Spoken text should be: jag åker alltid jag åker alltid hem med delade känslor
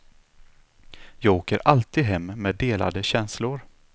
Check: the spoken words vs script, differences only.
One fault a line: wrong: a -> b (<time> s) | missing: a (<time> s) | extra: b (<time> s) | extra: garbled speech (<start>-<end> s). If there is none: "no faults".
missing: jag åker alltid (2.0 s)